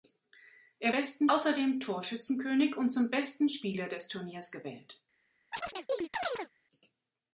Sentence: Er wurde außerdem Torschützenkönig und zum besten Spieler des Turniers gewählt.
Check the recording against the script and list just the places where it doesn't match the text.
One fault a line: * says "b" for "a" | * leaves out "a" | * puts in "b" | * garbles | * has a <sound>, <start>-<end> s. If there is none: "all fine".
* says "besten" for "wurde"
* has a chirp, 5.5-6.5 s